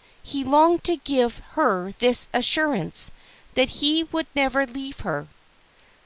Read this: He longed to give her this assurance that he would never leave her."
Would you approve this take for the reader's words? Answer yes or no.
yes